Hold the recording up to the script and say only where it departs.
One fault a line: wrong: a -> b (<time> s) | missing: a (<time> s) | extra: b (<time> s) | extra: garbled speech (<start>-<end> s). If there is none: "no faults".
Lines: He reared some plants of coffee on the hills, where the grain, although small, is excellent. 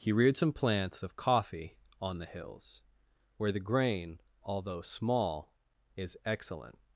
no faults